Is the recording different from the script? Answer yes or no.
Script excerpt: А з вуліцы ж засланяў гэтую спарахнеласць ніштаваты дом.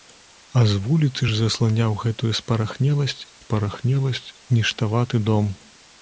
yes